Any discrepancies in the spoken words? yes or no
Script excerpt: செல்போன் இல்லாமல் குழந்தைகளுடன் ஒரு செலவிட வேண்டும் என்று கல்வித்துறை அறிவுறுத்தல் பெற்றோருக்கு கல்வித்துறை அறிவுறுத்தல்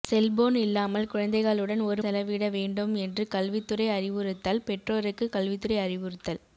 no